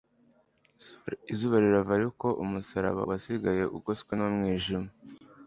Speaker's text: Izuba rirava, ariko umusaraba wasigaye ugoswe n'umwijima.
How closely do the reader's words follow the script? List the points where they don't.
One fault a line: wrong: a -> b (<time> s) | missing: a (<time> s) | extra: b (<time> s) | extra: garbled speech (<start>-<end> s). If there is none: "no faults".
no faults